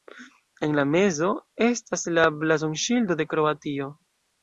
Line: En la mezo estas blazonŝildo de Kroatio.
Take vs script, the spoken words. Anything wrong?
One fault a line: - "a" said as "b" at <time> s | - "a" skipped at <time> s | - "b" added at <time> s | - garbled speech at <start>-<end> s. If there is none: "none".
- "la" added at 2.2 s